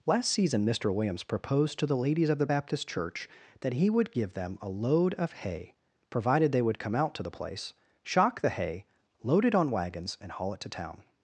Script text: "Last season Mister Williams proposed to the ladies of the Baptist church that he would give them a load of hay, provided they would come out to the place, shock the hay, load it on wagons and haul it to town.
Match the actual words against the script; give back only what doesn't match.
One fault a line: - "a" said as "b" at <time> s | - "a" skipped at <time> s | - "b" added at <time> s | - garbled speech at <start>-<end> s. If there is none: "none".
none